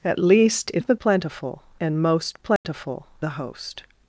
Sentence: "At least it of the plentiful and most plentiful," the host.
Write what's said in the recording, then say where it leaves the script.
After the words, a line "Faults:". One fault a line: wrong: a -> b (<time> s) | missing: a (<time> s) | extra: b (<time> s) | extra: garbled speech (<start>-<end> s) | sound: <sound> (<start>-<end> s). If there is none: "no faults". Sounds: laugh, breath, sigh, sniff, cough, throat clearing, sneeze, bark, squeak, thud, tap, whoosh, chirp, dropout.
"At least it of the plentiful and most plentiful," the host.
Faults:
sound: dropout (2.6-2.6 s)